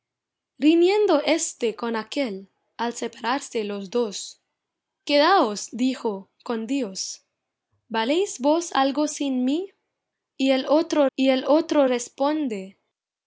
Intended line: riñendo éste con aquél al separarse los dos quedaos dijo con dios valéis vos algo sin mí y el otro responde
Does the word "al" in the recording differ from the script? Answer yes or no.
no